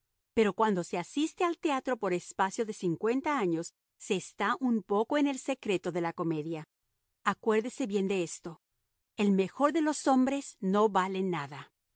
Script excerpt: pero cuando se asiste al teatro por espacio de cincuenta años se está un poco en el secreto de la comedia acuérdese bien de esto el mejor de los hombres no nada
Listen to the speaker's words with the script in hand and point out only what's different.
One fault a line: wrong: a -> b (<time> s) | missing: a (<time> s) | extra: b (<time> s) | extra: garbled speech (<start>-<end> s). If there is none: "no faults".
extra: vale (10.9 s)